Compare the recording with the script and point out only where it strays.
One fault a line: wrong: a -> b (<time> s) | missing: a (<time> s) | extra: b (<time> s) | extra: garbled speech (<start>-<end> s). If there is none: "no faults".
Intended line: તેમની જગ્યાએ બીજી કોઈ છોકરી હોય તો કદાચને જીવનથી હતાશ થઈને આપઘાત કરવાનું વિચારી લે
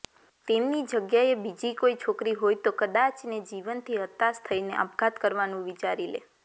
no faults